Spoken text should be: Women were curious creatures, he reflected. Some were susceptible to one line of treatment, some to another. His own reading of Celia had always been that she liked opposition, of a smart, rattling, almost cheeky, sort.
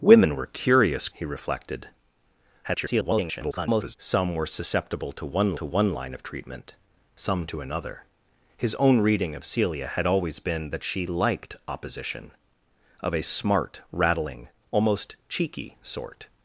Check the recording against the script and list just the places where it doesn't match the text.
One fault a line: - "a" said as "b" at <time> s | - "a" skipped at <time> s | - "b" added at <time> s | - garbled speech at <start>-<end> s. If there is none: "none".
- "creatures" skipped at 1.1 s
- garbled speech at 2.6-4.0 s
- "to one" added at 5.5 s